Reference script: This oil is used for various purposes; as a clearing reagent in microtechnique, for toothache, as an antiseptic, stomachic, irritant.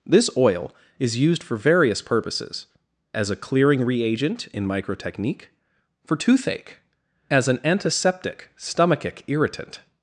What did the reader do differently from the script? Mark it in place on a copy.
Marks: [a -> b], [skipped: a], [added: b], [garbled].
This oil is used for various purposes; as a clearing reagent in microtechnique, for toothache, as an antiseptic, stomachic, irritant.